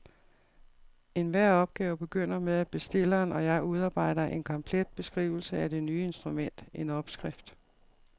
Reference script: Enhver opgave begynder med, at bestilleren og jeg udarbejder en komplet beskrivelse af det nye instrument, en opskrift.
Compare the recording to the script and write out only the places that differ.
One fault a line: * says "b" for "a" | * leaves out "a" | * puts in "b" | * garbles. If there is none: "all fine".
all fine